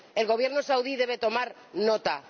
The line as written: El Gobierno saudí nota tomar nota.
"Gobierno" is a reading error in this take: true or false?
false